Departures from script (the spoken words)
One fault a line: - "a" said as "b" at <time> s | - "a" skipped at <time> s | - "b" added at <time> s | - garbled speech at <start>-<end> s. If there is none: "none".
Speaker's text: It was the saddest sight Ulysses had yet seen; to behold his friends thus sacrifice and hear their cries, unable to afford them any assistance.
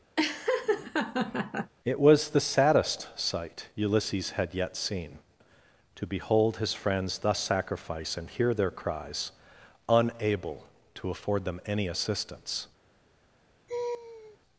none